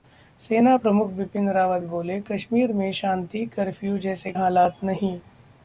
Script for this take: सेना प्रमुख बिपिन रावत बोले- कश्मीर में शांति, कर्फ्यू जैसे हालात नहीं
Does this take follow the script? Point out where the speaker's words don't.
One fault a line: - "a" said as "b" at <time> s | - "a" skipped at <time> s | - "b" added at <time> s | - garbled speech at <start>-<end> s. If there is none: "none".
none